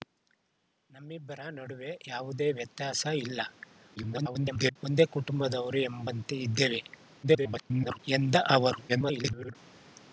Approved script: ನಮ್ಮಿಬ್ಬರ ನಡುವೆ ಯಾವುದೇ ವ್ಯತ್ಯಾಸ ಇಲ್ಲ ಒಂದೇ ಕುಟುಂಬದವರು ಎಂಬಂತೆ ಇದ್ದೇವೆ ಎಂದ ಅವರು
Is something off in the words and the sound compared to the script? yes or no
yes